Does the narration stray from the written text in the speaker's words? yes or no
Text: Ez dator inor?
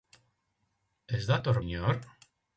no